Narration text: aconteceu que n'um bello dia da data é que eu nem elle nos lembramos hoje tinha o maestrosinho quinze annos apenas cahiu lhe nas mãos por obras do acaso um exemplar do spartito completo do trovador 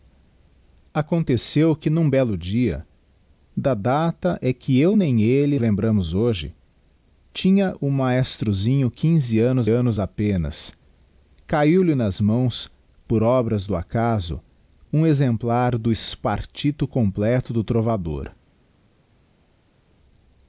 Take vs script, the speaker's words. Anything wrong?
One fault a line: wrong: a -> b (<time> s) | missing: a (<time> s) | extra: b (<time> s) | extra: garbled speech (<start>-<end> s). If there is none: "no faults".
missing: nos (5.6 s)
extra: annos (9.7 s)